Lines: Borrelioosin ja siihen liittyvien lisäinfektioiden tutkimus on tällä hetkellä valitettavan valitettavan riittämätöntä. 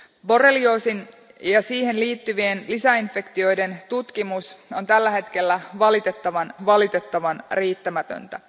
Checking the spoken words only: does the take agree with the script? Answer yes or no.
yes